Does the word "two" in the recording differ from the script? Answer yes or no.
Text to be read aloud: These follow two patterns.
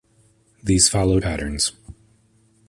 yes